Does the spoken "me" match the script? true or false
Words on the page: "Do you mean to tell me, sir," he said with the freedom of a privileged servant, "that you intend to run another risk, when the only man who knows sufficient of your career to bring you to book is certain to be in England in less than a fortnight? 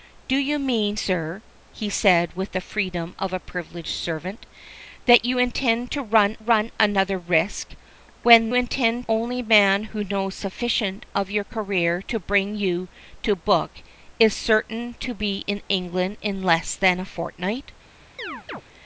false